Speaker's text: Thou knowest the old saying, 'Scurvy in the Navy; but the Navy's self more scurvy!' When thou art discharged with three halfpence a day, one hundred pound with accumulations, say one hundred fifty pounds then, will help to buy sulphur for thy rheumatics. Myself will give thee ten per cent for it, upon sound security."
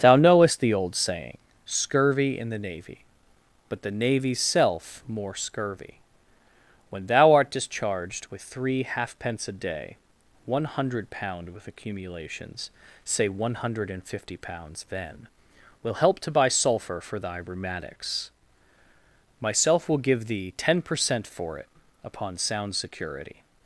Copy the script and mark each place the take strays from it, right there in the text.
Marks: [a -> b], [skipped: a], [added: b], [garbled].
Thou knowest the old saying, 'Scurvy in the Navy; but the Navy's self more scurvy!' When thou art discharged with three halfpence a day, one hundred pound with accumulations, say one hundred [added: and] fifty pounds then, will help to buy sulphur for thy rheumatics. Myself will give thee ten per cent for it, upon sound security."